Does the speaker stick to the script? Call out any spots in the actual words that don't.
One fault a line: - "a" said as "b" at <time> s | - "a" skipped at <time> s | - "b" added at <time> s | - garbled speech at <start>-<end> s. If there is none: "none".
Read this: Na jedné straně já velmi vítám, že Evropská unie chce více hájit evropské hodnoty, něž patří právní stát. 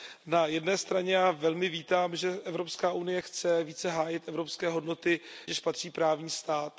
none